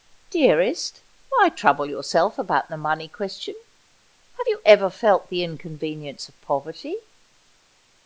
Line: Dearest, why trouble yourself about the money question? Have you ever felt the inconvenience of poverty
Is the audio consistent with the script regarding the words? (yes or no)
yes